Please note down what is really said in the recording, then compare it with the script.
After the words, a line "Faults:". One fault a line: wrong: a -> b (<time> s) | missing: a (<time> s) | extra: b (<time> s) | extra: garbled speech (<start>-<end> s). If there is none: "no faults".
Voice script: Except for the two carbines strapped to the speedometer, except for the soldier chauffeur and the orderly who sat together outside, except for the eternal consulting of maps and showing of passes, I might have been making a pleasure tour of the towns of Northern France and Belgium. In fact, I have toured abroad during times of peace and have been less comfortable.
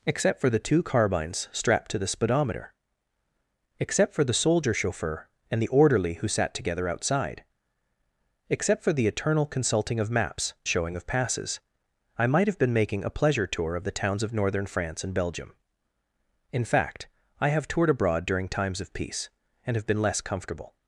Except for the two carbines strapped to the speedometer, except for the soldier chauffeur and the orderly who sat together outside, except for the eternal consulting of maps showing of passes, I might have been making a pleasure tour of the towns of Northern France and Belgium. In fact, I have toured abroad during times of peace and have been less comfortable.
Faults:
missing: and (10.6 s)